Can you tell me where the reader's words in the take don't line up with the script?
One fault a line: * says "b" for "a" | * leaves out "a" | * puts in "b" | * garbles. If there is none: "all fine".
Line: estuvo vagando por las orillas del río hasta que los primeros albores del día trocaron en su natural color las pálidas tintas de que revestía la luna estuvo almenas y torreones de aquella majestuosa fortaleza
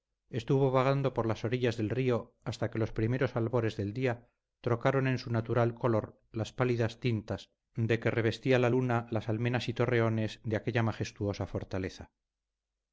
* says "las" for "estuvo"